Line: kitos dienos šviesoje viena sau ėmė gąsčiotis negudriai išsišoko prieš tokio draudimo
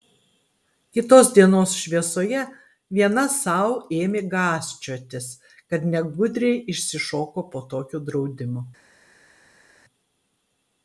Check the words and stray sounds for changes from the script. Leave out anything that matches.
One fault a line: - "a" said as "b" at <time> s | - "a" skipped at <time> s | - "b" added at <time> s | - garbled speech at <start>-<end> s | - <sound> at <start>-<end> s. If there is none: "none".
- "kad" added at 5.7 s
- "prieš" said as "po" at 7.6 s